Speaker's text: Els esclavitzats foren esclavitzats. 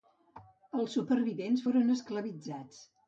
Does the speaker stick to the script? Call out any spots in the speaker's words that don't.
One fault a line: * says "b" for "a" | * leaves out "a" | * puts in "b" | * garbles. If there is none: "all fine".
* says "supervivents" for "esclavitzats"